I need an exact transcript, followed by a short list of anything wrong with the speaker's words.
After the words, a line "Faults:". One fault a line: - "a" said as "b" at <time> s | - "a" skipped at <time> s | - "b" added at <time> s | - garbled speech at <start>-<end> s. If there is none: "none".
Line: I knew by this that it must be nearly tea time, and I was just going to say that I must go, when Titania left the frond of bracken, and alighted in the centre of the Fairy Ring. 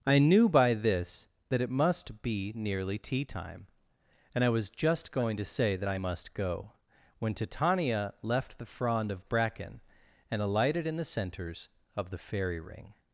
I knew by this that it must be nearly tea time, and I was just going to say that I must go, when Titania left the frond of bracken, and alighted in the centres of the Fairy Ring.
Faults:
- "centre" said as "centres" at 11.0 s